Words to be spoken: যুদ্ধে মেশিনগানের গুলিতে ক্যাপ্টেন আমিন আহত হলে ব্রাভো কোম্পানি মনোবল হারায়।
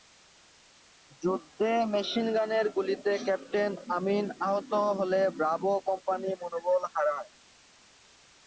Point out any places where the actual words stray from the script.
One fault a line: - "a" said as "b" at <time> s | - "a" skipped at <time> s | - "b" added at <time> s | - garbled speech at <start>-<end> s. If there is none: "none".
none